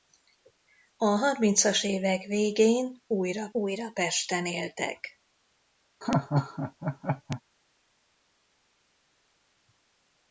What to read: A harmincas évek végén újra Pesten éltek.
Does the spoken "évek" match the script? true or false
true